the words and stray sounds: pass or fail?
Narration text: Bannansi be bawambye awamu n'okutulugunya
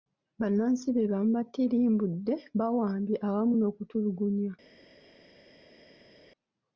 fail